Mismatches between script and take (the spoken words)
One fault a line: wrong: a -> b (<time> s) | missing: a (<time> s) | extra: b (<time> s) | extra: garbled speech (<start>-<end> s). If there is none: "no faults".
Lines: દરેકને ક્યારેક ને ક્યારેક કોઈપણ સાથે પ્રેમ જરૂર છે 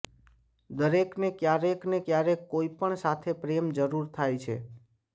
extra: થાય (4.1 s)